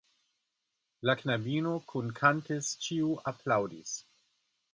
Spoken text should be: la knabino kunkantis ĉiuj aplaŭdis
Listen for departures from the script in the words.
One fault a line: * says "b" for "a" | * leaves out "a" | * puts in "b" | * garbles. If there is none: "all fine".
all fine